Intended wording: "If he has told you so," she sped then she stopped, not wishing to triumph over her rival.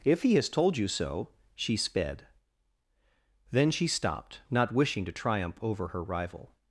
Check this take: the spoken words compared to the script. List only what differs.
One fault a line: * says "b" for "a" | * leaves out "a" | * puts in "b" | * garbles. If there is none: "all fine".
all fine